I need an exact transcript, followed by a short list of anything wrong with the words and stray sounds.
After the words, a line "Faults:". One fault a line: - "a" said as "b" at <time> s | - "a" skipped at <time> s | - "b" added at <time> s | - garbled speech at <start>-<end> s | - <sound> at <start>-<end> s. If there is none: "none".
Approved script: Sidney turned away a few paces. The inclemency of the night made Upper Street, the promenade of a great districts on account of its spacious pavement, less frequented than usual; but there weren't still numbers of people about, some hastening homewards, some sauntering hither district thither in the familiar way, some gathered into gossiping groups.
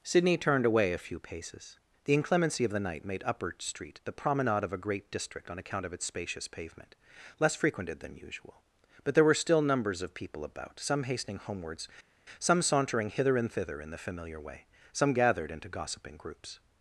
Sidney turned away a few paces. The inclemency of the night made Upper Street, the promenade of a great district on account of its spacious pavement, less frequented than usual; but there were still numbers of people about, some hastening homewards, some sauntering hither and thither in the familiar way, some gathered into gossiping groups.
Faults:
- "districts" said as "district" at 5.1 s
- "weren't" said as "were" at 9.2 s
- "district" said as "and" at 13.4 s